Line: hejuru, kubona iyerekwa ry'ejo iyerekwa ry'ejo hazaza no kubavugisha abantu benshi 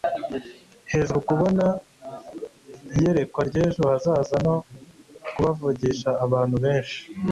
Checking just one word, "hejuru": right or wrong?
right